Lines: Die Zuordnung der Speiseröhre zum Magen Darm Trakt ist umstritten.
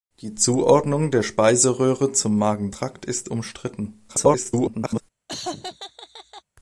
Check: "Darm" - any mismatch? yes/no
yes